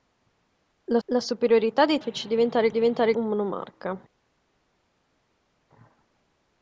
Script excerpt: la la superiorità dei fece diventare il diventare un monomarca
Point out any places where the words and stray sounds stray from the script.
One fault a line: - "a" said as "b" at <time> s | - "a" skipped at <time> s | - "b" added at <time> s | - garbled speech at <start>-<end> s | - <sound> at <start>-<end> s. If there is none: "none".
none